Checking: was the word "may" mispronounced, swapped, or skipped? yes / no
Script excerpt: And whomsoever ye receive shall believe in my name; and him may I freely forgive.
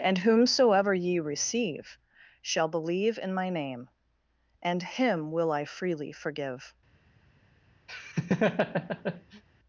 yes